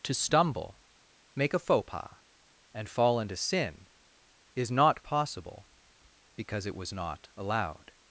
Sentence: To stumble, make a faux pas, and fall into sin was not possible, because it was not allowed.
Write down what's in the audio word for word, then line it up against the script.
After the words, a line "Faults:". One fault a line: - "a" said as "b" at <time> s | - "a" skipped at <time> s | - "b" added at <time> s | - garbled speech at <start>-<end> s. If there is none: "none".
To stumble, make a faux pas, and fall into sin is not possible, because it was not allowed.
Faults:
- "was" said as "is" at 4.5 s